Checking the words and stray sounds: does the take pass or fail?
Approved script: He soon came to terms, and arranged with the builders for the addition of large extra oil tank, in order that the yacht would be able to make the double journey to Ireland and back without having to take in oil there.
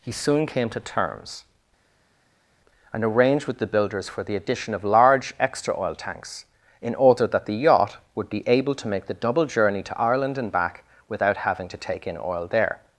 fail